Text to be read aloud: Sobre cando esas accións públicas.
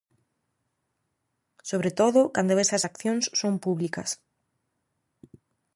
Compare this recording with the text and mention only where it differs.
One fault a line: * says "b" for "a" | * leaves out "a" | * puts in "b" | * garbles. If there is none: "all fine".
* puts in "todo"
* puts in "son"